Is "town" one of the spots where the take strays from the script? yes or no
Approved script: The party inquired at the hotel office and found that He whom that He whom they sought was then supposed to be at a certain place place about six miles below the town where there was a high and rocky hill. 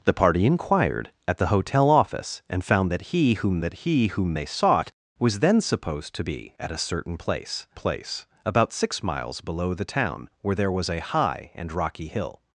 no